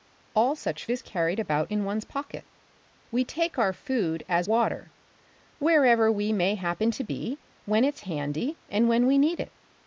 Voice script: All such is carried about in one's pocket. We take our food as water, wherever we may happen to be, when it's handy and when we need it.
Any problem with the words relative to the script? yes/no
no